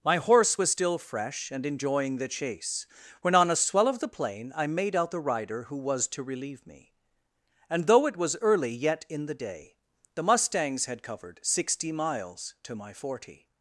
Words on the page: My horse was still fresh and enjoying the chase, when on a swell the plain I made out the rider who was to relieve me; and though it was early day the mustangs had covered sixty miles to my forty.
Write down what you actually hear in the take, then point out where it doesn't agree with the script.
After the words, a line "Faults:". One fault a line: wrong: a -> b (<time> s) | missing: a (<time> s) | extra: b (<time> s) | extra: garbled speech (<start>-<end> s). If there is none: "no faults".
My horse was still fresh and enjoying the chase, when on a swell of the plain I made out the rider who was to relieve me; and though it was early yet in the day the mustangs had covered sixty miles to my forty.
Faults:
extra: of (3.9 s)
extra: yet in the (8.7 s)